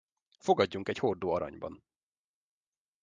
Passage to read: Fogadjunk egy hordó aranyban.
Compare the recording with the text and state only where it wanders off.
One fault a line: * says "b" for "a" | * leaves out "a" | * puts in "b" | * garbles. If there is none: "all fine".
all fine